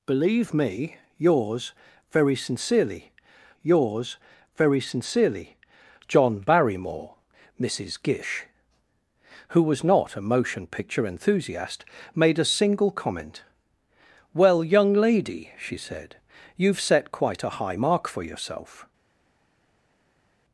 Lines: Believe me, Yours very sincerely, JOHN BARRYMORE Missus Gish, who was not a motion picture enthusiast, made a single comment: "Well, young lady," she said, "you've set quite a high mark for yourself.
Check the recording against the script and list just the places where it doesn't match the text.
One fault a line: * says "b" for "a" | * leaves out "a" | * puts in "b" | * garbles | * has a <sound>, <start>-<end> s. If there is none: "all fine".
* puts in "Yours very sincerely"